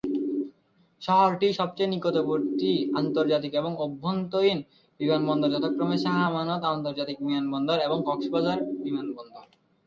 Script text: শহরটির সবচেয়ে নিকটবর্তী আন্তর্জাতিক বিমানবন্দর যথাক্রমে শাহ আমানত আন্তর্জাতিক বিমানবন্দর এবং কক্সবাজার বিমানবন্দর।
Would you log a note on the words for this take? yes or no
yes